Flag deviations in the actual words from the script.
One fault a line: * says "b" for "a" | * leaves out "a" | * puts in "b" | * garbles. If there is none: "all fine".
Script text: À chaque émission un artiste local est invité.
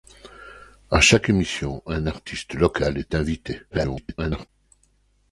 * garbles